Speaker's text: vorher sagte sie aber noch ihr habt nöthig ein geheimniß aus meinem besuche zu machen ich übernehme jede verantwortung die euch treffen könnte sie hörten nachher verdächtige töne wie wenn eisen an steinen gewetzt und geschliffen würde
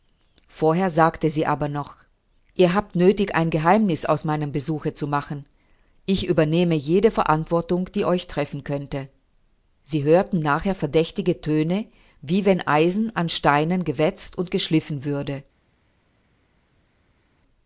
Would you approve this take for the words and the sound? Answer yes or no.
yes